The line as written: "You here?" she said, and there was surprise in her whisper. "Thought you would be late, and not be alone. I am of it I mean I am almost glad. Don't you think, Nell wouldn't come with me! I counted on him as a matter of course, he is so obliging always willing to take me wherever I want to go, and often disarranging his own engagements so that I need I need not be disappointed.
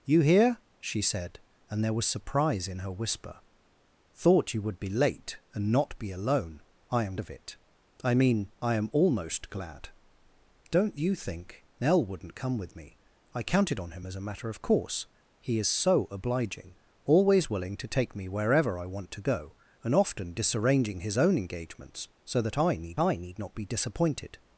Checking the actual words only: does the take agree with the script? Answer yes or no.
yes